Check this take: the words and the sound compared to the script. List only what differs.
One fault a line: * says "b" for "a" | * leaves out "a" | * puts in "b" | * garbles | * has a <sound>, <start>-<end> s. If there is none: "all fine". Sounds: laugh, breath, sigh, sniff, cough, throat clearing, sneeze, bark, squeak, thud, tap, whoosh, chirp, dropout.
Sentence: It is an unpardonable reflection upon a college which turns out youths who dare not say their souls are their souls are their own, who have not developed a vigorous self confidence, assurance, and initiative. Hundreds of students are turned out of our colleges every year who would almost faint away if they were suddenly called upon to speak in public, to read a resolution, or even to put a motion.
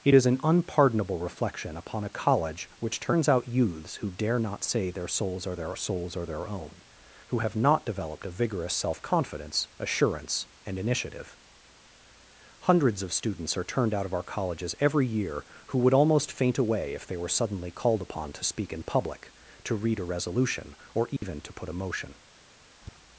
* has a dropout, 21.2-21.2 s
* has a tap, 22.8-23.0 s